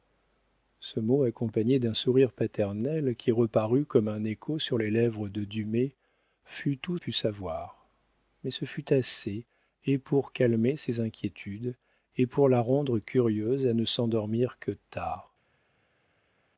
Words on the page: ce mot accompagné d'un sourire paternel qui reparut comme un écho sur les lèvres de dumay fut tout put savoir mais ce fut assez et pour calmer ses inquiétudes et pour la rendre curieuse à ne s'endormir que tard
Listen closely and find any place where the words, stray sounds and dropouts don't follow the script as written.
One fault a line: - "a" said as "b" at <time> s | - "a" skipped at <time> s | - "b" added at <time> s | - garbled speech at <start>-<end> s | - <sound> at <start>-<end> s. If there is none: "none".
none